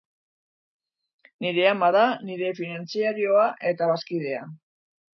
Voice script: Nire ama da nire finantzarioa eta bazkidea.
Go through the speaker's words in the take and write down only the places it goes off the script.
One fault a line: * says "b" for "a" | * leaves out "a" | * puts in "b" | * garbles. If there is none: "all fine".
all fine